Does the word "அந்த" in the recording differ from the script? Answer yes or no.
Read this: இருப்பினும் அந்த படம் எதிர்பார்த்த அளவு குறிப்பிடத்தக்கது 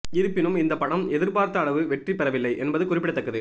yes